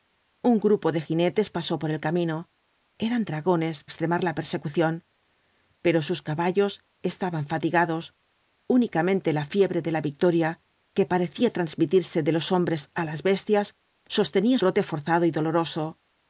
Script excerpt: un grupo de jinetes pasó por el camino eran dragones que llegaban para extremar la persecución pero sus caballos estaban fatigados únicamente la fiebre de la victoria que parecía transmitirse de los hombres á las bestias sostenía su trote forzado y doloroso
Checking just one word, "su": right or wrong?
wrong